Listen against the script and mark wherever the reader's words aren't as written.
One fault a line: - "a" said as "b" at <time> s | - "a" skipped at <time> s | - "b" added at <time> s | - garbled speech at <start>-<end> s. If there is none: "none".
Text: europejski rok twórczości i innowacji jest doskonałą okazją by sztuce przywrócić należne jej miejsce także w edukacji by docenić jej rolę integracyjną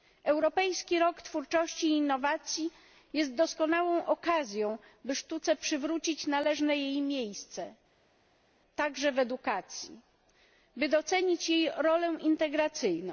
none